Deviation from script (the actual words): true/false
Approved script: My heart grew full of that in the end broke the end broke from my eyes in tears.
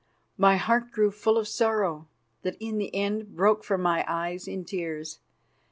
true